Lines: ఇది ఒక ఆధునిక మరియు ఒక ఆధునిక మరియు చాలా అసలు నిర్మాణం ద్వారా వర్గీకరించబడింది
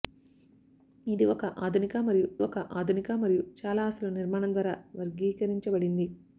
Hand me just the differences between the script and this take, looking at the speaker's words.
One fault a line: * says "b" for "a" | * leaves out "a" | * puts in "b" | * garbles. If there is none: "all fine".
all fine